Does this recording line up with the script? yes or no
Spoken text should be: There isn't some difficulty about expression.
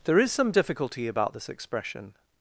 no